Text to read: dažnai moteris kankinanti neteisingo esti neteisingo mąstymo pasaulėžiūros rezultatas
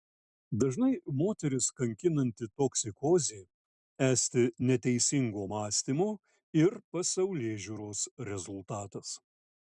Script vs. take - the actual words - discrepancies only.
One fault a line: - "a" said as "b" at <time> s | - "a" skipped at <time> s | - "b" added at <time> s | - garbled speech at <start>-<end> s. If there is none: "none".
- "neteisingo" said as "toksikozė" at 2.6 s
- "ir" added at 6.7 s